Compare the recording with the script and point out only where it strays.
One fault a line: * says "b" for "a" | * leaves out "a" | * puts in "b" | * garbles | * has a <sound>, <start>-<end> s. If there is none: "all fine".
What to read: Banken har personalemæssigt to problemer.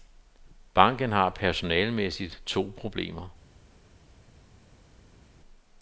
all fine